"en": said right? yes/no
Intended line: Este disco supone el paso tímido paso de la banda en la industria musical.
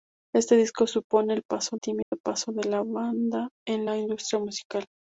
yes